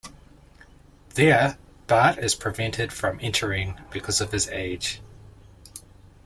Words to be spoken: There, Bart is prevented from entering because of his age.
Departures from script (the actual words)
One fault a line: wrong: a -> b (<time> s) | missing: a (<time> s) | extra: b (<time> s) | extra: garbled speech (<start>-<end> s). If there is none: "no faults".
no faults